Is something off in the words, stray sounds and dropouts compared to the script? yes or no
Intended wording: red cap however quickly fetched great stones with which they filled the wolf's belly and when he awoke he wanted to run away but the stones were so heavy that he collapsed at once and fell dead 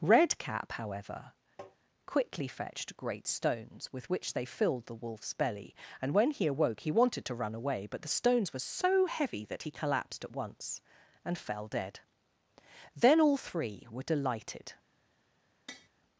yes